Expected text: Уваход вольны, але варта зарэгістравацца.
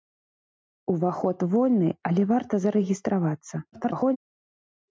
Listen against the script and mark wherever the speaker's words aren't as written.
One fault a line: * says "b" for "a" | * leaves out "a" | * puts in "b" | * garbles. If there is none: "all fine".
* garbles